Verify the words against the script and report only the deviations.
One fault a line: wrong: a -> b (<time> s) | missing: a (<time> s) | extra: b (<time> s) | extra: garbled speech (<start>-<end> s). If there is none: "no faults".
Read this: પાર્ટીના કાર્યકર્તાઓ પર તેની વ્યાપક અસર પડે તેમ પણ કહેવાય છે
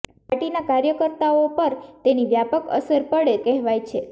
missing: તેમ પણ (3.4 s)